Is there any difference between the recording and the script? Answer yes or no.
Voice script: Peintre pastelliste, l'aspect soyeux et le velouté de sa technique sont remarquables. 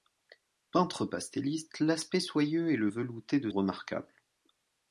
yes